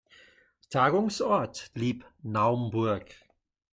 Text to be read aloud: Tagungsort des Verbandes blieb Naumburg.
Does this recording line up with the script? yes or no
no